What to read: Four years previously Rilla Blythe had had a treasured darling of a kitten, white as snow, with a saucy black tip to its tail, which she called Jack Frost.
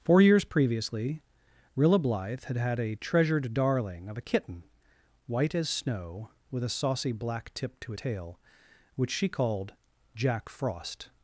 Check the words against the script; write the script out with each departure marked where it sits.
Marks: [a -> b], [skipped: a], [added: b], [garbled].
Four years previously Rilla Blythe had had a treasured darling of a kitten, white as snow, with a saucy black tip to [skipped: its] tail, which she called Jack Frost.